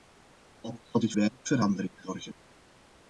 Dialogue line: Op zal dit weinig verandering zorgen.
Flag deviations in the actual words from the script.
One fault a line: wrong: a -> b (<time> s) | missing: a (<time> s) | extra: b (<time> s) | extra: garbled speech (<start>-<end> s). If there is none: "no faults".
no faults